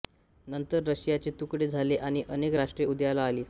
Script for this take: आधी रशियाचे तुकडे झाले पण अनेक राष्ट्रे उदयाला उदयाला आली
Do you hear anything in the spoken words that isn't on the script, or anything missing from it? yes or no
yes